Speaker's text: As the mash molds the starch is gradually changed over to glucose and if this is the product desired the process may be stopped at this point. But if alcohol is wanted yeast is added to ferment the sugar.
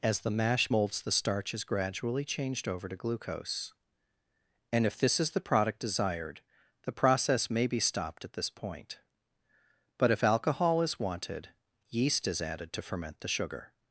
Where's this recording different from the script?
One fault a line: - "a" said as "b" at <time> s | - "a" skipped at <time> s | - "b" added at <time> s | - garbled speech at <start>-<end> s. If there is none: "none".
none